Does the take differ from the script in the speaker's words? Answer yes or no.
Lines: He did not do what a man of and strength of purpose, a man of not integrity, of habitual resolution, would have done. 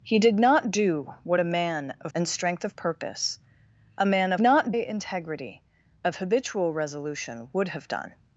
no